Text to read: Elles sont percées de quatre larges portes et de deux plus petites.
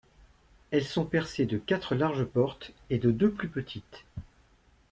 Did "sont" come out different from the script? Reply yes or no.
no